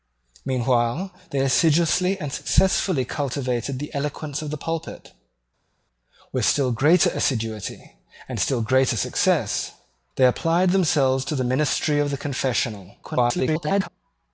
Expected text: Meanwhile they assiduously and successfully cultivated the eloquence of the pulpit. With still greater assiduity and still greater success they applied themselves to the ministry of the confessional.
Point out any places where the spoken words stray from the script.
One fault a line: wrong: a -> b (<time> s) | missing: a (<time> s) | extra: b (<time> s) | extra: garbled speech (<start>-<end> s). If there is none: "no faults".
extra: garbled speech (13.0-13.9 s)